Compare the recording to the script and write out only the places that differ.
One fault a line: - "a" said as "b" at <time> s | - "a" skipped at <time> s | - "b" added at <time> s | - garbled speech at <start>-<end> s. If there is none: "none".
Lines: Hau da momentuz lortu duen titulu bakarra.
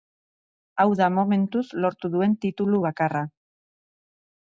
none